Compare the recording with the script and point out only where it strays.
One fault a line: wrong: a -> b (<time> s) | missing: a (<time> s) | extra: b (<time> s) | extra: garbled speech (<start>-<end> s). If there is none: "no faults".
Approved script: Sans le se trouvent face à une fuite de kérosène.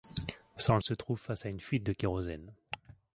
no faults